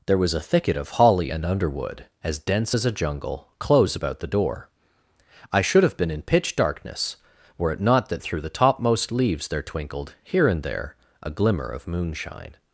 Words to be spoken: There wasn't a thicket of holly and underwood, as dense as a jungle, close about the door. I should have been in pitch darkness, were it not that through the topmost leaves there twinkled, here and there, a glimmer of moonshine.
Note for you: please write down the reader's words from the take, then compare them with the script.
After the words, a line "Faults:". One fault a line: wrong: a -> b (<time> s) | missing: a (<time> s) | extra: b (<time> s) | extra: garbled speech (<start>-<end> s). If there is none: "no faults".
There was a thicket of holly and underwood, as dense as a jungle, close about the door. I should have been in pitch darkness, were it not that through the topmost leaves there twinkled, here and there, a glimmer of moonshine.
Faults:
wrong: wasn't -> was (0.2 s)